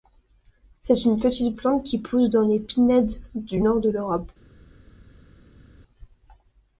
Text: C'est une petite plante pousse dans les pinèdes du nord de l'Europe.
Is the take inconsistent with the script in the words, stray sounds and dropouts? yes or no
yes